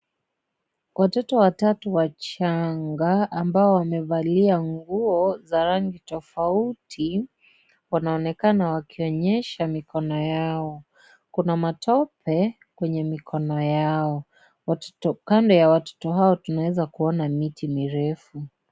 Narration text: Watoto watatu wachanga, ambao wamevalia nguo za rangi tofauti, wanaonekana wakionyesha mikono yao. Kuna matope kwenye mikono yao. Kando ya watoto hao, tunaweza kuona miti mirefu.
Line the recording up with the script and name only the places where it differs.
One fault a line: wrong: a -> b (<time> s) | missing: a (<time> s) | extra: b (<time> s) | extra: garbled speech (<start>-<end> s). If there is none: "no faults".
no faults